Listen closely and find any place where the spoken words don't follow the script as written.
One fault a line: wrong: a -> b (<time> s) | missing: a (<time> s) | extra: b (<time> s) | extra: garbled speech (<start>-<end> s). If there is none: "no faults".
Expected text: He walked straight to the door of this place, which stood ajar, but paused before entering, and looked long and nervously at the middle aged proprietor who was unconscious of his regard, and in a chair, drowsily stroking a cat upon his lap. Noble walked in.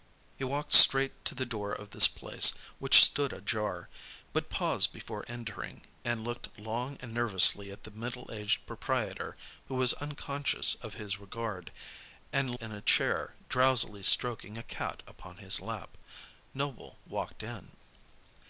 no faults